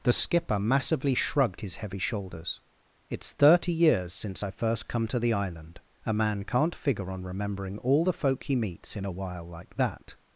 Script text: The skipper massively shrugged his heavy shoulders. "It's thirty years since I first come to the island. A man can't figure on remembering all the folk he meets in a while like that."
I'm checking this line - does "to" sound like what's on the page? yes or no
yes